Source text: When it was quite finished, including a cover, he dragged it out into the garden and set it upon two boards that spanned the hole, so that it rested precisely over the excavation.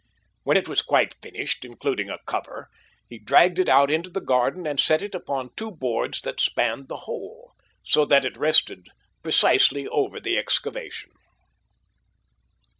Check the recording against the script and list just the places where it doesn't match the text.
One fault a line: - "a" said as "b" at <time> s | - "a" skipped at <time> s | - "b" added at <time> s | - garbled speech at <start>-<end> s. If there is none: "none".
none